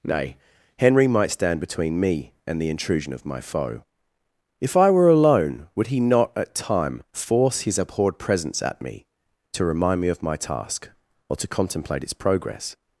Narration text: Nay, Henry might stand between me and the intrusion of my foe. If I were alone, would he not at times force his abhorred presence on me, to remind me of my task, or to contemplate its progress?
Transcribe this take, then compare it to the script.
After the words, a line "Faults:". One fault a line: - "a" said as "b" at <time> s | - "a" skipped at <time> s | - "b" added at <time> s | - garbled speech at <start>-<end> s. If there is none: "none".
Nay, Henry might stand between me and the intrusion of my foe. If I were alone, would he not at time force his abhorred presence at me, to remind me of my task, or to contemplate its progress?
Faults:
- "times" said as "time" at 6.5 s
- "on" said as "at" at 8.6 s